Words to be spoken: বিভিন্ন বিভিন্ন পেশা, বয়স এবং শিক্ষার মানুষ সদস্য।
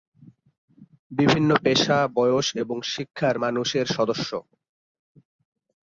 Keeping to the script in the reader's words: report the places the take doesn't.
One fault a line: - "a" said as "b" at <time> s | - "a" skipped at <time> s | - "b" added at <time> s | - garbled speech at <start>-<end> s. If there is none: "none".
- "বিভিন্ন" skipped at 1.5 s
- "এর" added at 3.7 s